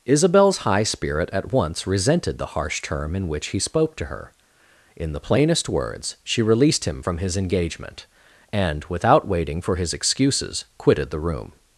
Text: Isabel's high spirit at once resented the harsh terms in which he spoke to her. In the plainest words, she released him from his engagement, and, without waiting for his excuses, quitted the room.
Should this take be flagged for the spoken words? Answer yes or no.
yes